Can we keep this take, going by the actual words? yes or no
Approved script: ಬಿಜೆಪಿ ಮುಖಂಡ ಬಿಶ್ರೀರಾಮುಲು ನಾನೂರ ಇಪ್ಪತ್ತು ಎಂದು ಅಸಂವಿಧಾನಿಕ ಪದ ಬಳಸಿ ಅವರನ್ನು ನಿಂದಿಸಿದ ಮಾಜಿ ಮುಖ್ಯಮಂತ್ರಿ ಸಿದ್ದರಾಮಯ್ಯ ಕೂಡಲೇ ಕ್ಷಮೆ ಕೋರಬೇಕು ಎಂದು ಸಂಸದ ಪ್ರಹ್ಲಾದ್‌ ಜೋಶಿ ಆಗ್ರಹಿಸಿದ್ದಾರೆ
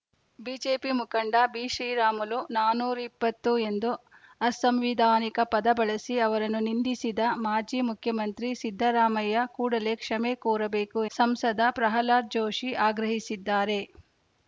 no